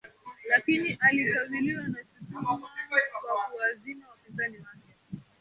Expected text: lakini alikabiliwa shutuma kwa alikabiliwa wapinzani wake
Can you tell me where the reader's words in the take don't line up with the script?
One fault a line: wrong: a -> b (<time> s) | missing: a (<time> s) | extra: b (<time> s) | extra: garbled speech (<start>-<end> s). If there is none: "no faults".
extra: na (1.8 s)
wrong: alikabiliwa -> kuwazima (3.5 s)